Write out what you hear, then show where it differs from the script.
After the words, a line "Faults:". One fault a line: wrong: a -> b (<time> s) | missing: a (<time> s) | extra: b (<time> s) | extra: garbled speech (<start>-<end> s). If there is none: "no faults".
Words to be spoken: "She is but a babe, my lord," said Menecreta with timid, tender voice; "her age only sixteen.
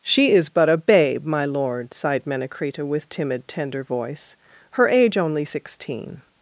"She is but a babe, my lord," sighed Menecreta with timid, tender voice; "her age only sixteen.
Faults:
wrong: said -> sighed (1.9 s)